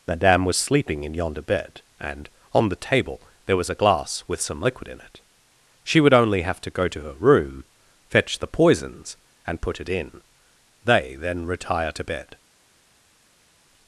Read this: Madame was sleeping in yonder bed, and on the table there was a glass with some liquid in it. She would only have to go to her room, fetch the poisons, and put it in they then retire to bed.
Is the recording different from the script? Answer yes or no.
no